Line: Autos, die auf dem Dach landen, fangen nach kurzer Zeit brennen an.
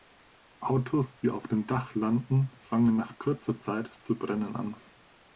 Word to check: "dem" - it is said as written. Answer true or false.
true